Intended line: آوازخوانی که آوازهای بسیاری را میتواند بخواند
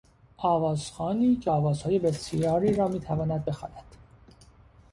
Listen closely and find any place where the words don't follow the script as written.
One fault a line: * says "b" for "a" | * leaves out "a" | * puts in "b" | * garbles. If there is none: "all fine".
all fine